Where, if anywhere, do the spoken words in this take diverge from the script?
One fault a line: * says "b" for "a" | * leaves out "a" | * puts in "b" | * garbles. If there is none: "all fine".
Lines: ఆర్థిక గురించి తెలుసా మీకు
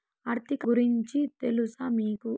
all fine